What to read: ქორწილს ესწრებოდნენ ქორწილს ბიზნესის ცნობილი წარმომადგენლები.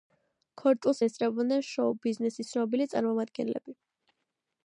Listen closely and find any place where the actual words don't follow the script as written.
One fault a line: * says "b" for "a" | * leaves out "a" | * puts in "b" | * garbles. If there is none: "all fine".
* says "შოუ" for "ქორწილს"